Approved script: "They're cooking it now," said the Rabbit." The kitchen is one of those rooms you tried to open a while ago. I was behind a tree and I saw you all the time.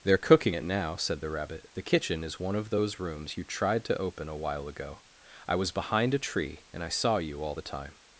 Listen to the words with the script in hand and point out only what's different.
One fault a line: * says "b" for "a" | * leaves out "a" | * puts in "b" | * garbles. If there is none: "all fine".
all fine